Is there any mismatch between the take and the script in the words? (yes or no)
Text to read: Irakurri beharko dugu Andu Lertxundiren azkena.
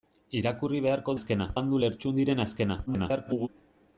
yes